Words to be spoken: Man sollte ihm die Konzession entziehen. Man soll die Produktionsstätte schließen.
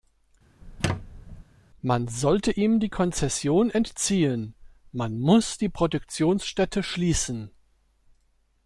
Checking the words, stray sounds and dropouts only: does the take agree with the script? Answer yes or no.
no